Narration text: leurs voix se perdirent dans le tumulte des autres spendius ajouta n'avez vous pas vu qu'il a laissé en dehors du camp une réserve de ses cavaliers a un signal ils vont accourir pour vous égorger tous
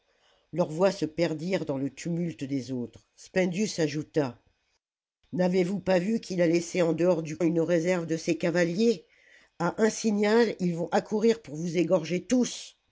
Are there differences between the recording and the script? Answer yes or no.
yes